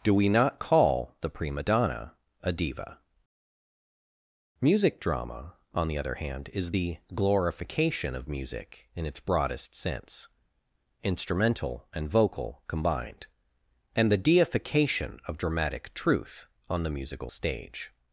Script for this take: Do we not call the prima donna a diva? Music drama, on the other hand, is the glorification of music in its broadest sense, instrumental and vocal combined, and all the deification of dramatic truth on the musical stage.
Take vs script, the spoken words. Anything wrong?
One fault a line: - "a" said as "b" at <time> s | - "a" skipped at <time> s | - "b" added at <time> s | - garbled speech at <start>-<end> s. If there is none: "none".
- "all" skipped at 14.1 s